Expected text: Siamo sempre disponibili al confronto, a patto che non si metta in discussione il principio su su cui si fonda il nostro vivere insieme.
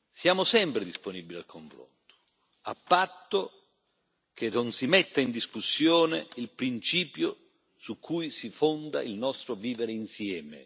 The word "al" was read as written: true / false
true